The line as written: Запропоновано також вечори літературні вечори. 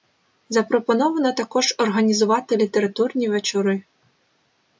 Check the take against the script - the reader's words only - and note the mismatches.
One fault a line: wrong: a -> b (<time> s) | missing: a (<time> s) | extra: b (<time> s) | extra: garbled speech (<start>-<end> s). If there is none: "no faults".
wrong: вечори -> організувати (1.8 s)